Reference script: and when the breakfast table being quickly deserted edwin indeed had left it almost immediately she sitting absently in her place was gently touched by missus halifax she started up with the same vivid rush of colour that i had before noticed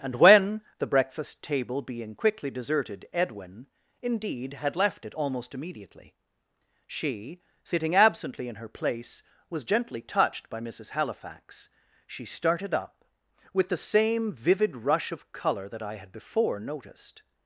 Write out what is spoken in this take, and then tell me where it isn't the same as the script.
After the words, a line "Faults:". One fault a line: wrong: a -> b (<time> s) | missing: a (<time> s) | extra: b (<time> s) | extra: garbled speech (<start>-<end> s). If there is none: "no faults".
and when the breakfast table being quickly deserted edwin indeed had left it almost immediately she sitting absently in her place was gently touched by missus halifax she started up with the same vivid rush of colour that i had before noticed
Faults:
no faults